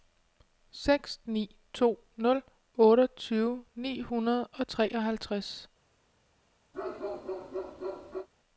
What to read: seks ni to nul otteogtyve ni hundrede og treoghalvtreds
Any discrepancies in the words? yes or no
no